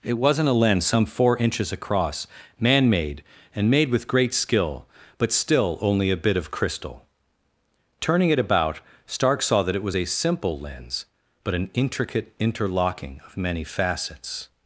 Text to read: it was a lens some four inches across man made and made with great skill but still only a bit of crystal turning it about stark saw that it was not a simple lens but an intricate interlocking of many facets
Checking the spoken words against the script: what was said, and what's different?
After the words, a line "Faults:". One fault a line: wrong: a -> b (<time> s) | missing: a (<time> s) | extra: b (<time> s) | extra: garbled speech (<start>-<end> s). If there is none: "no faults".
it wasn't a lens some four inches across man made and made with great skill but still only a bit of crystal turning it about stark saw that it was a simple lens but an intricate interlocking of many facets
Faults:
wrong: was -> wasn't (0.2 s)
missing: not (10.0 s)